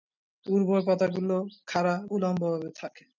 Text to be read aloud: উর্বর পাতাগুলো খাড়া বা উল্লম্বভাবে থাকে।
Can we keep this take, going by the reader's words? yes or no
no